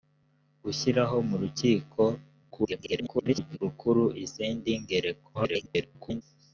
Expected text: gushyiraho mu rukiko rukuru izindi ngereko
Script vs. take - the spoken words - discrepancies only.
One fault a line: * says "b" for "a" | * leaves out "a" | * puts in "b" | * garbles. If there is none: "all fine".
* garbles
* garbles